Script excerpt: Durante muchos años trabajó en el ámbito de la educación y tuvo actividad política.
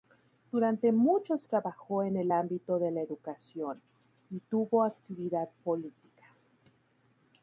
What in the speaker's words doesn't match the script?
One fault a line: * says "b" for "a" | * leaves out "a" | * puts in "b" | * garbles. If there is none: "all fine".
* leaves out "años"